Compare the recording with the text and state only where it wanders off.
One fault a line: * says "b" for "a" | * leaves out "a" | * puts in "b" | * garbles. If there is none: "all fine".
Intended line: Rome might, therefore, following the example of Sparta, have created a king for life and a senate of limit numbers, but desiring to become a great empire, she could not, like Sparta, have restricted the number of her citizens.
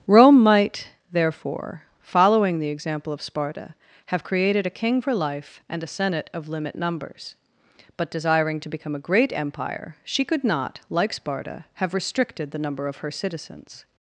all fine